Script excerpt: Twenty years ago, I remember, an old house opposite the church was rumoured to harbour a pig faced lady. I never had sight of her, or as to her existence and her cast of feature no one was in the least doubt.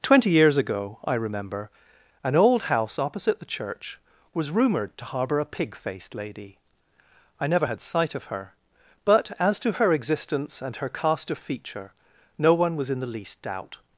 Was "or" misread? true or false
true